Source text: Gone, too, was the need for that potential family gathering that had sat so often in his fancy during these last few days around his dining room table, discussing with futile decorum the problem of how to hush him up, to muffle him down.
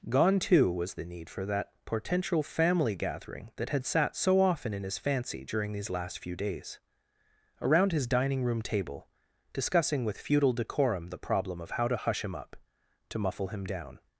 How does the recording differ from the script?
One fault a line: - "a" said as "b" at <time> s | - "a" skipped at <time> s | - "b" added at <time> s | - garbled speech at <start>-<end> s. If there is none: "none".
none